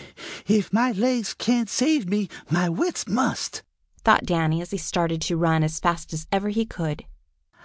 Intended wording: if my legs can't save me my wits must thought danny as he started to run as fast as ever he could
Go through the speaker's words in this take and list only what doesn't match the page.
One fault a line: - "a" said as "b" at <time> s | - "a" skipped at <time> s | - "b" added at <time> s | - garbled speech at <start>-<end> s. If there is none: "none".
none